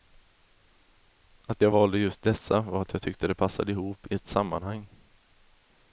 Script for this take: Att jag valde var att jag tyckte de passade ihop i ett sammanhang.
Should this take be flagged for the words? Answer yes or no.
yes